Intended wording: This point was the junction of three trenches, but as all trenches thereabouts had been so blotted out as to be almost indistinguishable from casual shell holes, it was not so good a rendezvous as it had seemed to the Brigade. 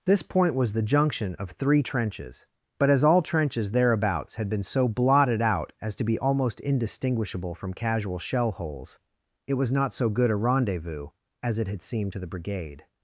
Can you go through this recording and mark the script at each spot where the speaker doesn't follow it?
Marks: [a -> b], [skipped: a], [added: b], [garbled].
This point was the junction of three trenches, but as all trenches thereabouts had been so blotted out as to be almost indistinguishable from casual shell holes, it was not so good a rendezvous as it had seemed to the Brigade.